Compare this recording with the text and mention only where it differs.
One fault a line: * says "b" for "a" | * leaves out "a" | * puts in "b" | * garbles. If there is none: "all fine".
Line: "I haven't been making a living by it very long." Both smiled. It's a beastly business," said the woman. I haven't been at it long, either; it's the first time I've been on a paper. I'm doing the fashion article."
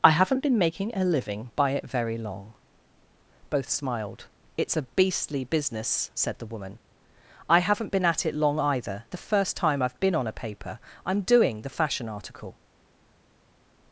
* leaves out "it's"